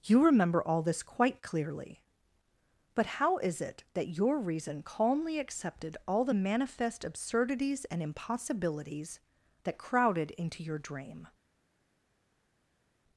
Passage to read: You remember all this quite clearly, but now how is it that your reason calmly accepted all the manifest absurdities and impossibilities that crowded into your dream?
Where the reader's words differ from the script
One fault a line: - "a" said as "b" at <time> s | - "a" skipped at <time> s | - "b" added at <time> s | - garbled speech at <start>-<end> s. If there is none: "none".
- "now" skipped at 3.0 s